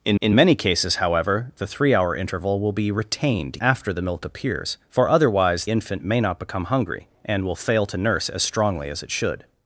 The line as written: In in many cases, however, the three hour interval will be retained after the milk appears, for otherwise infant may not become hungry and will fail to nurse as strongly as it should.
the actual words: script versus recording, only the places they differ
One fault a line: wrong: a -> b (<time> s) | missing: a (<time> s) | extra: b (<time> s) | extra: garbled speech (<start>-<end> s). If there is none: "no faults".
no faults